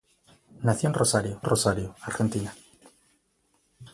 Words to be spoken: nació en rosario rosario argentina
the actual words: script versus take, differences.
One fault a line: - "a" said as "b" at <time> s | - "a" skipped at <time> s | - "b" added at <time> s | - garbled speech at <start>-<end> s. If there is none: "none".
none